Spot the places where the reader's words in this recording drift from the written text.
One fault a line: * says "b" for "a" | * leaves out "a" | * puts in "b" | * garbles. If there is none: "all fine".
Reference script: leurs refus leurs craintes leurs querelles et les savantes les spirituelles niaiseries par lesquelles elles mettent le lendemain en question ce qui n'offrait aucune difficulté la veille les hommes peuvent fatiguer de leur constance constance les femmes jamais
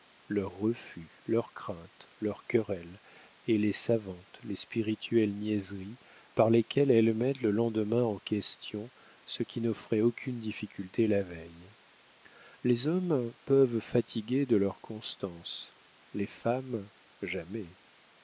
* leaves out "constance"